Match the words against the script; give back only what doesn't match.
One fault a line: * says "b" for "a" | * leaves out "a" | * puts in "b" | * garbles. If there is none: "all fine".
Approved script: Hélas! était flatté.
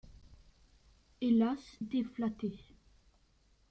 all fine